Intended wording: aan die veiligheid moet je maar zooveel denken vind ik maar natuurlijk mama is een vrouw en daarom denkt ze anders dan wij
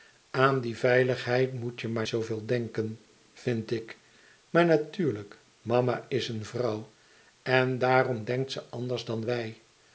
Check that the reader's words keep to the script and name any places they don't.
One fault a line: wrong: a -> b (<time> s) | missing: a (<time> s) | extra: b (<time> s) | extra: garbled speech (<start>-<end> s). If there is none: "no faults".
no faults